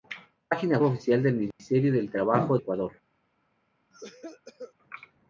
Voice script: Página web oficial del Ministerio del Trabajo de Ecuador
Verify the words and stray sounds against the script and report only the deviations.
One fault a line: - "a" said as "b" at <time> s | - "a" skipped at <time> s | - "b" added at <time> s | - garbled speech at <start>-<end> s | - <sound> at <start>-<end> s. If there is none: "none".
- "web" skipped at 0.8 s
- dropout at 1.5-1.6 s
- "de" skipped at 2.6 s
- cough at 3.9-4.7 s